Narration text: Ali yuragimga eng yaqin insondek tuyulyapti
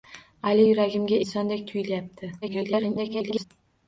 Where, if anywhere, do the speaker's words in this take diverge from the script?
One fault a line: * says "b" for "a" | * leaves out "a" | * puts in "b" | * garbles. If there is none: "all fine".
* leaves out "eng yaqin"
* garbles